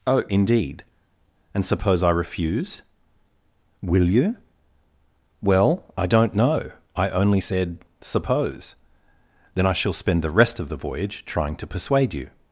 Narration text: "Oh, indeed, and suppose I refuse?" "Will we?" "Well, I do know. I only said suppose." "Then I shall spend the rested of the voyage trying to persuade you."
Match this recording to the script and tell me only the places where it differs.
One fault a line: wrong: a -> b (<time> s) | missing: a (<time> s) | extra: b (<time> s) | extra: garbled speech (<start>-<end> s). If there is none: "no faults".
wrong: we -> you (4.1 s)
wrong: do -> don't (6.1 s)
wrong: rested -> rest (10.3 s)